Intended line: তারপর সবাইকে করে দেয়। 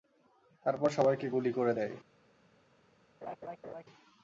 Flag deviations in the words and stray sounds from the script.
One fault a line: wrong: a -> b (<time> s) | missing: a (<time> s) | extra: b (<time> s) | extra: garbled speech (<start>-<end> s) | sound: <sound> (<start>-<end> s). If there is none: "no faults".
extra: গুলি (1.3 s)
sound: laugh (3.2-3.8 s)